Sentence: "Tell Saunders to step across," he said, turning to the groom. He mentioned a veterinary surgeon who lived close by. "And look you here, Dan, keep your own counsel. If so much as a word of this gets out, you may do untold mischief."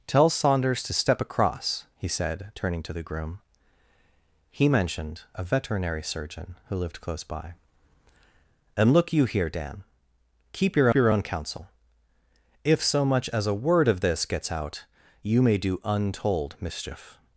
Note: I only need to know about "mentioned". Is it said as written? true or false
true